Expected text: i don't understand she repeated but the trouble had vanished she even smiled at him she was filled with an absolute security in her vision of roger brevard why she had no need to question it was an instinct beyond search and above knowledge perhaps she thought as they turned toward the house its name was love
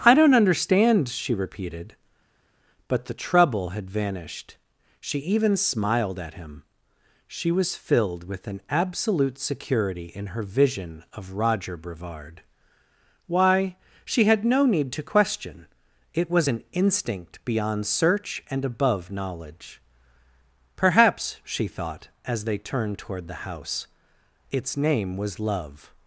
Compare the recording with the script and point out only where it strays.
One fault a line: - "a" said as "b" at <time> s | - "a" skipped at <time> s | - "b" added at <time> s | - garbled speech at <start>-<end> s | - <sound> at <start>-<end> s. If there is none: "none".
none